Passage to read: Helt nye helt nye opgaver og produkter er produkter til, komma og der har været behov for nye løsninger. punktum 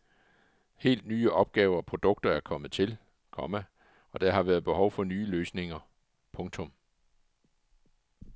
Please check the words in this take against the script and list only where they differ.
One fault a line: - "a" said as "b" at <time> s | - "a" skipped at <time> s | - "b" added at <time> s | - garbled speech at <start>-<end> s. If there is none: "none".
- "helt nye" skipped at 1.3 s
- "produkter" said as "kommet" at 2.4 s